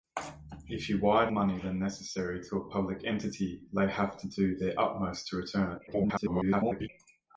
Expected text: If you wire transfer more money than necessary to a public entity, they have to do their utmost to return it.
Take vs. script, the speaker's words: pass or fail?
fail